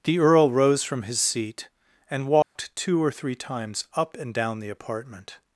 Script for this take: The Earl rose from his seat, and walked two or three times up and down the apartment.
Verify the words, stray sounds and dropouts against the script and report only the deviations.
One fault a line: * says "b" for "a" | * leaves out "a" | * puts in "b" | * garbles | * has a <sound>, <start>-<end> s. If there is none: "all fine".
* has a dropout, 2.4-2.6 s